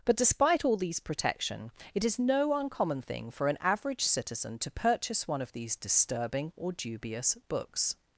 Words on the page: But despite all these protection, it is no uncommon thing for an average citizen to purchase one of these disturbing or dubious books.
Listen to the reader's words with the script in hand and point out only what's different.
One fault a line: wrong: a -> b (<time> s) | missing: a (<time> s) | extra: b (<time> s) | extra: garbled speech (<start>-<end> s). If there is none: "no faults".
no faults